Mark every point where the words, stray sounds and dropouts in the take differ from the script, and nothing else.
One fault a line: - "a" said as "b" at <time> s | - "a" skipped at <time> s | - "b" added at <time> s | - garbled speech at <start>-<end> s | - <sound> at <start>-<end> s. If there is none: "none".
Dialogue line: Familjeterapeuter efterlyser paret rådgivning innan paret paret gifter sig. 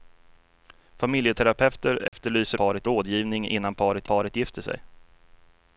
- dropout at 2.1-2.1 s